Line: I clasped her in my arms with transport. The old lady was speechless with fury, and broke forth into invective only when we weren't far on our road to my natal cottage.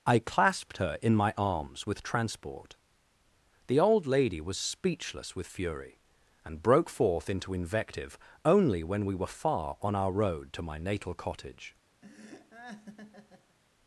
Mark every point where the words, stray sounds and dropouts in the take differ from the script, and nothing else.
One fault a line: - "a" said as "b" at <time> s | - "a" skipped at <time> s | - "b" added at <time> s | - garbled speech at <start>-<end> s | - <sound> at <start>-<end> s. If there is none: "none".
- "weren't" said as "were" at 9.1 s
- laugh at 12.0-13.6 s